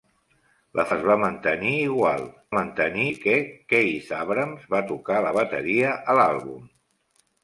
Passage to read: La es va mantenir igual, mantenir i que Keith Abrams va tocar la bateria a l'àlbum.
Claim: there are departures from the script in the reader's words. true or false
false